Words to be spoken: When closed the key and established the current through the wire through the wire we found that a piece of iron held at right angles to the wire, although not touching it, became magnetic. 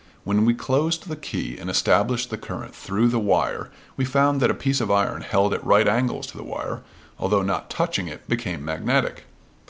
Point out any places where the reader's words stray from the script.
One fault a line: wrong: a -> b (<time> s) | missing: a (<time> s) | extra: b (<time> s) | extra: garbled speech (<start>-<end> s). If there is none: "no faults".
extra: we (0.5 s)
missing: through the wire (3.7 s)